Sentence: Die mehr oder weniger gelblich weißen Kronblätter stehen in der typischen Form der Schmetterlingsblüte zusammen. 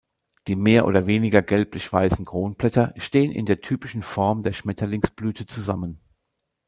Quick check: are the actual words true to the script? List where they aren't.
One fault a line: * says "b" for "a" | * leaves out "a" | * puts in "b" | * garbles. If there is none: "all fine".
all fine